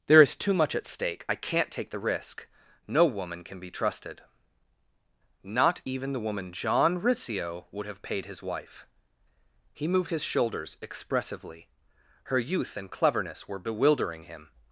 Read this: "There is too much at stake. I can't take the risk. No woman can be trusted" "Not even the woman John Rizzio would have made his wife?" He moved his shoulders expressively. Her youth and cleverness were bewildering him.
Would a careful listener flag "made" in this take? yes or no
yes